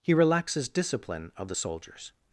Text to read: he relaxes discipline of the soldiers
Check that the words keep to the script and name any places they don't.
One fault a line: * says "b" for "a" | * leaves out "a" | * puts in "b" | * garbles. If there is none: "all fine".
all fine